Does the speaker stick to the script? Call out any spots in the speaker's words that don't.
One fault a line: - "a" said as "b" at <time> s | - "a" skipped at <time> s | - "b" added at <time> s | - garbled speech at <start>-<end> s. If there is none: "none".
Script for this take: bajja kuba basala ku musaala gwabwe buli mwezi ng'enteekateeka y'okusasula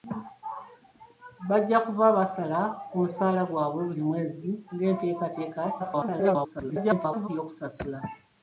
- garbled speech at 5.8-7.3 s